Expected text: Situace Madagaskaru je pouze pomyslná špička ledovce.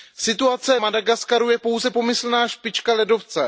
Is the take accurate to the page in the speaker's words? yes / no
yes